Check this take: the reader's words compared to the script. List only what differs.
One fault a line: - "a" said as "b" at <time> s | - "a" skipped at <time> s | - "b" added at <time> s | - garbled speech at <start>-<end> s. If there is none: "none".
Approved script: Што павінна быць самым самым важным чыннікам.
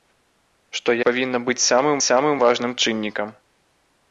none